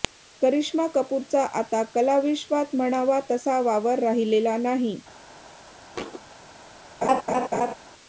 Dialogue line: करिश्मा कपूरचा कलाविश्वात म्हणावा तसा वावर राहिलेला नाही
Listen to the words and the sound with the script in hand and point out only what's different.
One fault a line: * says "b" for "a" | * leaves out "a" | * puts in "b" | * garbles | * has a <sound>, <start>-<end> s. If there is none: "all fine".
* puts in "आता"
* has a thud, 5.9-6.2 s
* has a laugh, 7.0-7.7 s